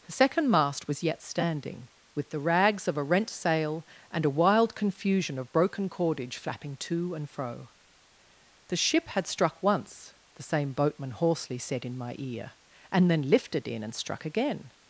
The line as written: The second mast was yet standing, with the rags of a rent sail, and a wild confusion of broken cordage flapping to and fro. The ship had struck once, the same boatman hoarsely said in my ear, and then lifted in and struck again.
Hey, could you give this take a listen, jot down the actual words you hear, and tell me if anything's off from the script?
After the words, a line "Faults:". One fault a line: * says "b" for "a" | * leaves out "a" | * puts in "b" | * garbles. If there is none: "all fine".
The second mast was yet standing, with the rags of a rent sail, and a wild confusion of broken cordage flapping to and fro. The ship had struck once, the same boatman hoarsely said in my ear, and then lifted in and struck again.
Faults:
all fine